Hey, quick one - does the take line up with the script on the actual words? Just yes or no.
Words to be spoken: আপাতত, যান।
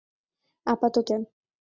yes